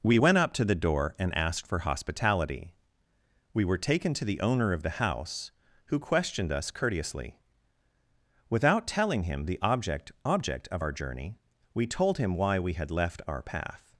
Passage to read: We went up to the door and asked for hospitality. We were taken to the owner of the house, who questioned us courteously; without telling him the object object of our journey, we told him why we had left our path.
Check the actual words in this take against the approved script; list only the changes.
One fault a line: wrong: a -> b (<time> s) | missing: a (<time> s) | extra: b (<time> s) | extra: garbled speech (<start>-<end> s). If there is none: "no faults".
no faults